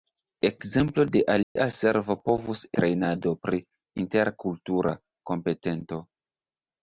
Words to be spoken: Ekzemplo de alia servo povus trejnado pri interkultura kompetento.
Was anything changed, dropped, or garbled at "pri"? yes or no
no